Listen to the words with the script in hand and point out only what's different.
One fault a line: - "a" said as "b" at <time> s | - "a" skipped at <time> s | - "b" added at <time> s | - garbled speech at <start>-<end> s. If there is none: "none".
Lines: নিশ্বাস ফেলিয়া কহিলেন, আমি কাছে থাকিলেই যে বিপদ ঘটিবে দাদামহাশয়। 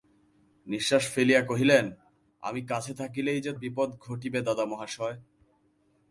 none